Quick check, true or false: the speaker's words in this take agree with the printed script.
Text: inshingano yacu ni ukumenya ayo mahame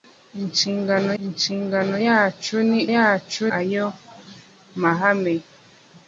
false